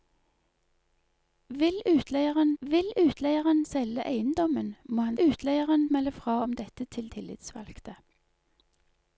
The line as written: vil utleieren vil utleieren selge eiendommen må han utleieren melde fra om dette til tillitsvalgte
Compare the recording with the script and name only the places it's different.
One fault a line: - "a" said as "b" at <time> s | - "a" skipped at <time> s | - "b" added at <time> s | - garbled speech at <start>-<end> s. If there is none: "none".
none